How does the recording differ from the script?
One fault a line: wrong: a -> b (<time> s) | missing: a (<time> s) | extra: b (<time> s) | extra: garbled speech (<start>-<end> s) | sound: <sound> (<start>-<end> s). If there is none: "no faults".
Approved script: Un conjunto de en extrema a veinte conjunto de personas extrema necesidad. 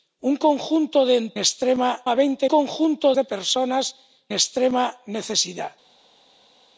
no faults